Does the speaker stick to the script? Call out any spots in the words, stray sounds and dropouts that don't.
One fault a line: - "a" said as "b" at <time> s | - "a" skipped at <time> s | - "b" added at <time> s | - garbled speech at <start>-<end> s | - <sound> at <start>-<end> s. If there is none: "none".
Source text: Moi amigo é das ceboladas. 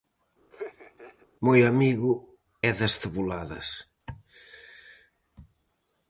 - laugh at 0.5-1.3 s